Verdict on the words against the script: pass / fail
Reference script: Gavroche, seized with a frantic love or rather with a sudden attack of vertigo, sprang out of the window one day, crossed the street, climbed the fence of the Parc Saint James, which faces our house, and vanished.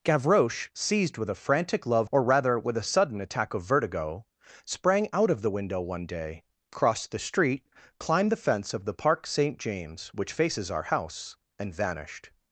pass